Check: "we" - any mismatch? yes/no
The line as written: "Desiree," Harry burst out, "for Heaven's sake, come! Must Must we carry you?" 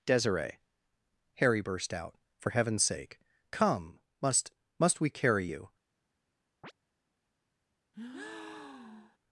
no